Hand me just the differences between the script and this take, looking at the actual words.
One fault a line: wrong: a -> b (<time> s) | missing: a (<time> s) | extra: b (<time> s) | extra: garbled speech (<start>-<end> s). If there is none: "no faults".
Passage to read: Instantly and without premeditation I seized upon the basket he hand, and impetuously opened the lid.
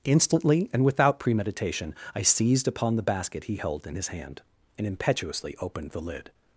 extra: held in his (3.5 s)